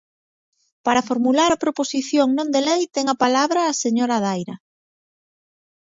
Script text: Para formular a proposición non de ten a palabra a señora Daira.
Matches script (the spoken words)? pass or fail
fail